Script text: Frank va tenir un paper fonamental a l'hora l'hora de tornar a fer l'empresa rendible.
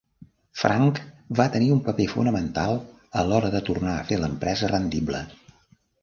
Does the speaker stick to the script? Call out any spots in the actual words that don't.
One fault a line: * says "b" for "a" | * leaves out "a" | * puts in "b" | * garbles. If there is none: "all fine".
* leaves out "l'hora"